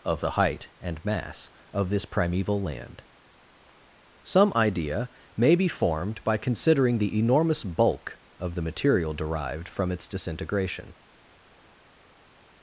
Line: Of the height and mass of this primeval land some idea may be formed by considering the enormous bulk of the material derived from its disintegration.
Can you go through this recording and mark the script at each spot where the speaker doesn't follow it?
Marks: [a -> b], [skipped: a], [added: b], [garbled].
Of the height and mass of this primeval land some idea may be formed by considering the enormous bulk of the material derived from its disintegration.